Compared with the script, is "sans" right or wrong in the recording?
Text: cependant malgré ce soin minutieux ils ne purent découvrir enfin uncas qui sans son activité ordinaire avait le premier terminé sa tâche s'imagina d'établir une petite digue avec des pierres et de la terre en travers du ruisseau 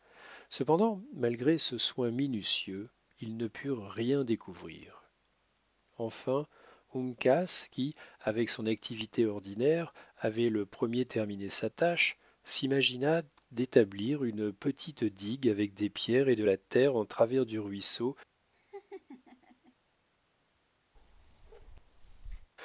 wrong